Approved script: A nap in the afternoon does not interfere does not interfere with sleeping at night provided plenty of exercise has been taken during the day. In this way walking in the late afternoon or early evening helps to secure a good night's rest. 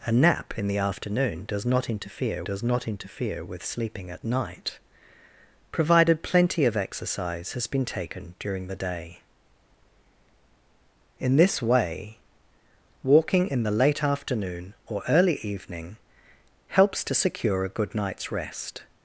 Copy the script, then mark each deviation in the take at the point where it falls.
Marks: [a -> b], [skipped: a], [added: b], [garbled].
A nap in the afternoon does not interfere does not interfere with sleeping at night provided plenty of exercise has been taken during the day. In this way walking in the late afternoon or early evening helps to secure a good night's rest.